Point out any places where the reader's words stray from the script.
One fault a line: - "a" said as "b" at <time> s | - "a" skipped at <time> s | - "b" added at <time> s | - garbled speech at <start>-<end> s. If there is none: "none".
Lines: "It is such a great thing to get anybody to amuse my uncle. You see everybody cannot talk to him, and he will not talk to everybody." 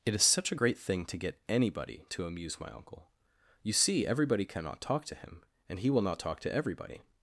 none